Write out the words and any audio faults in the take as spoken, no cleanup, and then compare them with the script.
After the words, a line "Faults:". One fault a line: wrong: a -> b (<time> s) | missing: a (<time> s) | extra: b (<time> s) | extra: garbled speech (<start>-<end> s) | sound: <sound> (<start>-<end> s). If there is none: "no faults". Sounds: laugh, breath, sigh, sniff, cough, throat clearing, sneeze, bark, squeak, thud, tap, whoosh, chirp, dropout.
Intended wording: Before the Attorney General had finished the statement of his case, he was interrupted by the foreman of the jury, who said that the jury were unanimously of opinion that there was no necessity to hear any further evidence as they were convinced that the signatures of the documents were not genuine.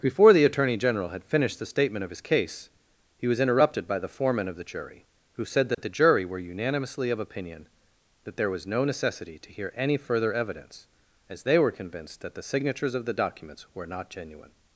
Before the Attorney General had finished the statement of his case, he was interrupted by the foreman of the jury, who said that the jury were unanimously of opinion that there was no necessity to hear any further evidence as they were convinced that the signatures of the documents were not genuine.
Faults:
sound: dropout (5.7-5.8 s)